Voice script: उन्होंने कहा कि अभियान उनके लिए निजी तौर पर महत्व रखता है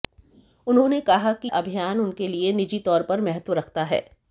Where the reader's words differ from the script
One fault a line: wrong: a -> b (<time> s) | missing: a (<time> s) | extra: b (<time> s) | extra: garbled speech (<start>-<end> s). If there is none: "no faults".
no faults